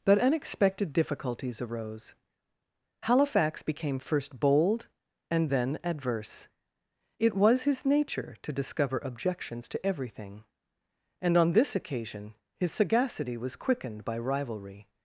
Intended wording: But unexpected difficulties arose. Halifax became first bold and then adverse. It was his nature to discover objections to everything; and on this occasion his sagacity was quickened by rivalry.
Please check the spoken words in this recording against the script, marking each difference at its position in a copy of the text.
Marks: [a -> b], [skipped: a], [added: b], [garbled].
But unexpected difficulties arose. Halifax became first bold and then adverse. It was his nature to discover objections to everything; and on this occasion his sagacity was quickened by rivalry.